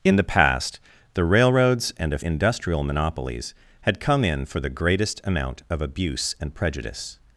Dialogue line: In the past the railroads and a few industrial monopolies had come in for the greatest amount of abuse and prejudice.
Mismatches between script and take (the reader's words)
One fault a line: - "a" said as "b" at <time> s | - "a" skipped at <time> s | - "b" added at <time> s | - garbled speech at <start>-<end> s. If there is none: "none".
- "few" skipped at 2.2 s